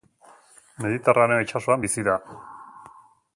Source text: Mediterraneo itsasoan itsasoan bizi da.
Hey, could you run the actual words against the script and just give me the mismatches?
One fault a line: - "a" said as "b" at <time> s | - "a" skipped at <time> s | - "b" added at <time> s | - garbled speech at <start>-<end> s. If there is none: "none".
- "itsasoan" skipped at 1.9 s